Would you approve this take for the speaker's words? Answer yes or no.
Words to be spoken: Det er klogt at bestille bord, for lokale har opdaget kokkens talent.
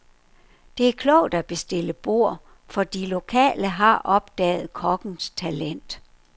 no